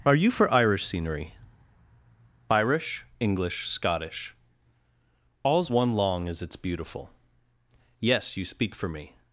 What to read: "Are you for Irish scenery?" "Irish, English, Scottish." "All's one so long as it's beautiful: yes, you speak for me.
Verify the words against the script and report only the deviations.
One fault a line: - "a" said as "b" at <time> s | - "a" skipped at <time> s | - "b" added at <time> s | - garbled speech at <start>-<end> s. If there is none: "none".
- "so" skipped at 5.9 s